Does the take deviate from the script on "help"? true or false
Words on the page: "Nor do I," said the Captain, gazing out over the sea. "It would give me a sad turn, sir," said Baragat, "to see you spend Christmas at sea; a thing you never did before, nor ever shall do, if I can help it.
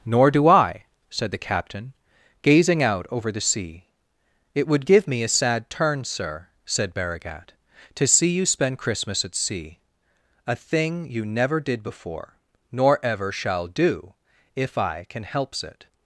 true